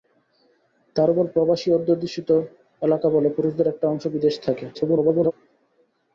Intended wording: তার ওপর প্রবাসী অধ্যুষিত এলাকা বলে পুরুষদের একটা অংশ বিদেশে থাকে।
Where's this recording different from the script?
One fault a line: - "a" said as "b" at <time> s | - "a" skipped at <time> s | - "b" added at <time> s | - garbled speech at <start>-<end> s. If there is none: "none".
- garbled speech at 4.7-5.3 s